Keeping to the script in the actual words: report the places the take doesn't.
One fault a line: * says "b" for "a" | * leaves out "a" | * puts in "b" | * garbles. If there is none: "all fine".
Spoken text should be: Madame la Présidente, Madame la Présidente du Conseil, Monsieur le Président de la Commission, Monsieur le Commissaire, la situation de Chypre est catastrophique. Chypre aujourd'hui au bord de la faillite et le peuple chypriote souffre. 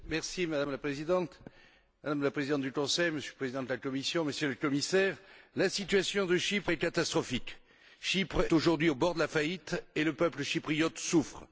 all fine